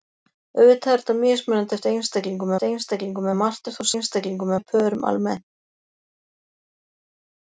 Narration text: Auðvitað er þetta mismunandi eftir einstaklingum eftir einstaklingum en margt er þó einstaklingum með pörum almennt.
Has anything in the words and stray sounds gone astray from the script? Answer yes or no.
no